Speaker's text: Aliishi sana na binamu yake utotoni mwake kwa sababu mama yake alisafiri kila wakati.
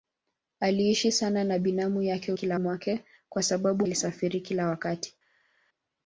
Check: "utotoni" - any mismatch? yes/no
yes